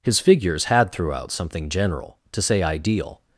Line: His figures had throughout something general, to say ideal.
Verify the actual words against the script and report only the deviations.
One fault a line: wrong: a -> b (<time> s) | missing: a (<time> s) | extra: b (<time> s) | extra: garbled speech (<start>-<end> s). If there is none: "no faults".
no faults